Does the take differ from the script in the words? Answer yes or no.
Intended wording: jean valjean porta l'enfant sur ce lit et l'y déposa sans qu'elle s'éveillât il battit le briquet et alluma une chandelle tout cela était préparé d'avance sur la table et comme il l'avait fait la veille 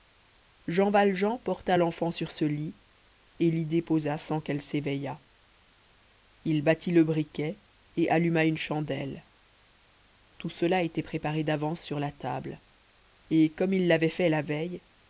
no